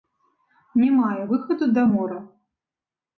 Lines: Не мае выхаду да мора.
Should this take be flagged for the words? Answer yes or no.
no